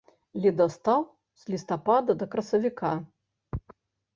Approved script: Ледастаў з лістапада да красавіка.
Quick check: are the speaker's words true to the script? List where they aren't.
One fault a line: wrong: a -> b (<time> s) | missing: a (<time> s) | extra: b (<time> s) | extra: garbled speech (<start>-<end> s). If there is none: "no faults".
no faults